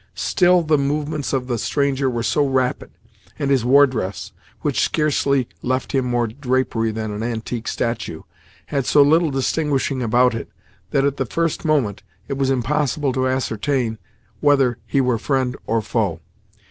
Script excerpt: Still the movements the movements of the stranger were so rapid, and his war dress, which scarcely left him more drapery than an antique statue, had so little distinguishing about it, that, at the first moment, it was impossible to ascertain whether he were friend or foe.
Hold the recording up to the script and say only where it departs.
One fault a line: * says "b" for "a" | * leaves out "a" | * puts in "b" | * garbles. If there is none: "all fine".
* leaves out "the movements"